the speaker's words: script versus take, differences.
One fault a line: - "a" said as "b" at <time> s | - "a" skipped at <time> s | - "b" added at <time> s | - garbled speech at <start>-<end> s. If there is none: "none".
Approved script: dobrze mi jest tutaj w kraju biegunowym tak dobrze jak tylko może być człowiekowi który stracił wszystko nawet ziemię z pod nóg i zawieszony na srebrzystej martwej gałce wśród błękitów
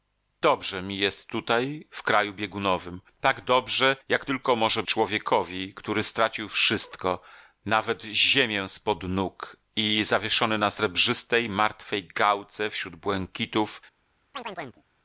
- "być" skipped at 4.8 s